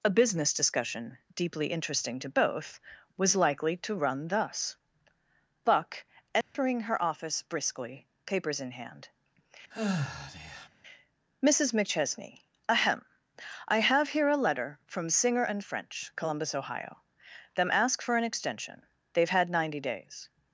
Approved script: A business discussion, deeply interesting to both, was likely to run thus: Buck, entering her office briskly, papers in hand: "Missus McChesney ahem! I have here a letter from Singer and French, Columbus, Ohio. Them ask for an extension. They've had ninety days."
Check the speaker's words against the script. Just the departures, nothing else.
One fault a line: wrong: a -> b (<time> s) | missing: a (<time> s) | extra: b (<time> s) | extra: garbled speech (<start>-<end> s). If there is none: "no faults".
no faults